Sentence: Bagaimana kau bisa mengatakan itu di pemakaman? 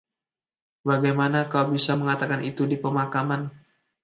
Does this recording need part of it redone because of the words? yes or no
no